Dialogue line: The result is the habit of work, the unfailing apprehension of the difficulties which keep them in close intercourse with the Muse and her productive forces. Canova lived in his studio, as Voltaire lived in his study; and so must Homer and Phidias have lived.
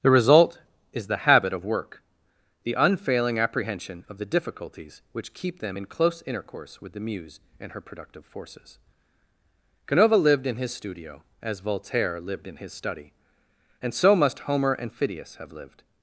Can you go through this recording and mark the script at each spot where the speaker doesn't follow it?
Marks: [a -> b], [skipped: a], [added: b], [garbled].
The result is the habit of work, the unfailing apprehension of the difficulties which keep them in close intercourse with the Muse and her productive forces. Canova lived in his studio, as Voltaire lived in his study; and so must Homer and Phidias have lived.